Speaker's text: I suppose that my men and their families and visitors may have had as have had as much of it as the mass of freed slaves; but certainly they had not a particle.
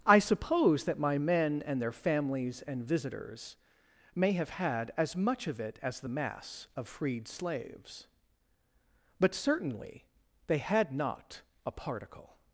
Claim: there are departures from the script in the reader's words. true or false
true